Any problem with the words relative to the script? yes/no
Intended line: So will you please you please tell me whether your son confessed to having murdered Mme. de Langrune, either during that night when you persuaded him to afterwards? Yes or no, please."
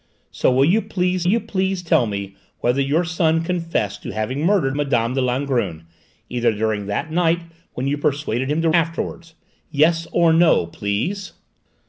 no